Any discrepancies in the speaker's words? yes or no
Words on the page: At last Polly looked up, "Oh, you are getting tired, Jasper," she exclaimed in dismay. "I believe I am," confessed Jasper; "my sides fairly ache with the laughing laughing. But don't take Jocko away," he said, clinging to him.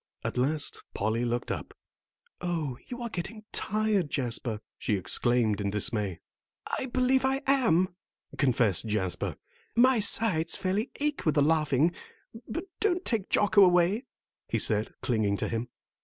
yes